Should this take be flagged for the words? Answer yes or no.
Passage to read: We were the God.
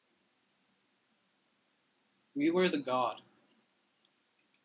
no